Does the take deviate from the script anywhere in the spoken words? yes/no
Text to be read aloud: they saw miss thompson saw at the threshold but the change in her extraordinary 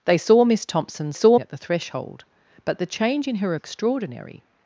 no